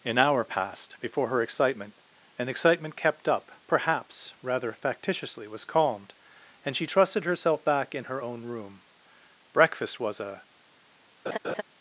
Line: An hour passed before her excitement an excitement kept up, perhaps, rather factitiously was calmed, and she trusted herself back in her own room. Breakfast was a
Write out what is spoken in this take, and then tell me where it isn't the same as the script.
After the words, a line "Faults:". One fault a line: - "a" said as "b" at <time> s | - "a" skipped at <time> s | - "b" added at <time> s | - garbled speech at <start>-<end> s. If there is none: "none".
An hour passed before her excitement an excitement kept up, perhaps, rather factitiously was calmed, and she trusted herself back in her own room. Breakfast was a
Faults:
none